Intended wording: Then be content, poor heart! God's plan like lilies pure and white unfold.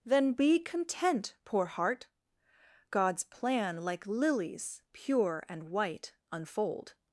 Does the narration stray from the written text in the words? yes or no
no